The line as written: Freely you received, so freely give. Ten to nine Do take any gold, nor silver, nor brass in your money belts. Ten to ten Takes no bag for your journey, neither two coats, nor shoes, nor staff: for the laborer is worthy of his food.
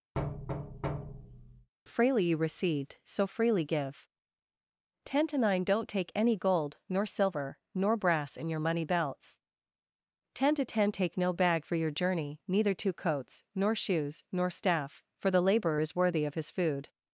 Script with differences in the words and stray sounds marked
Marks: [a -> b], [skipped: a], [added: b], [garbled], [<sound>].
[thud] Freely you received, so freely give. Ten to nine [Do -> Don't] take any gold, nor silver, nor brass in your money belts. Ten to ten [Takes -> Take] no bag for your journey, neither two coats, nor shoes, nor staff: for the laborer is worthy of his food.